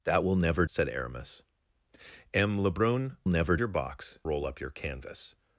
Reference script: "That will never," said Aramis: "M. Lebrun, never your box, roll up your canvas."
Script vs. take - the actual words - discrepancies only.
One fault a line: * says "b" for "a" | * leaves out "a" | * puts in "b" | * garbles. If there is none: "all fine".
all fine